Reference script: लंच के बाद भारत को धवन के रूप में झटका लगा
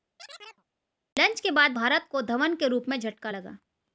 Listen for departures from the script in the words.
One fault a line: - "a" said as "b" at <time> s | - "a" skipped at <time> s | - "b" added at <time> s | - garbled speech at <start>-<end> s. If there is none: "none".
none